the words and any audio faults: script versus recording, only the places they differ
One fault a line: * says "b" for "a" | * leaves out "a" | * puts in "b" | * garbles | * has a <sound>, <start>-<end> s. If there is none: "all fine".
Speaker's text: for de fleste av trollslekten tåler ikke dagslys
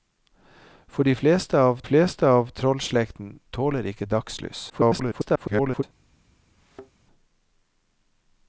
* puts in "fleste av"
* garbles
* has a thud, 6.6-6.9 s